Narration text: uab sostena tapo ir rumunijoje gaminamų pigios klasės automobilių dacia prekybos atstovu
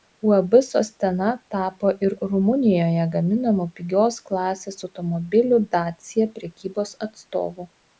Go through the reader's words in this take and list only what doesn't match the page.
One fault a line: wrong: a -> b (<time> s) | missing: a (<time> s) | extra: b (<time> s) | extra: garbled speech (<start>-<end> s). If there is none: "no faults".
no faults